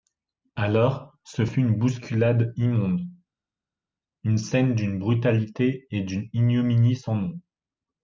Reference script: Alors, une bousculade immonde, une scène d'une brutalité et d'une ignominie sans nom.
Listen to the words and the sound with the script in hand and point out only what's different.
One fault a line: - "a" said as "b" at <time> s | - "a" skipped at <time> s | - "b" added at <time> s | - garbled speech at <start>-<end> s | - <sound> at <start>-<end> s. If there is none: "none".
- "ce fut" added at 1.2 s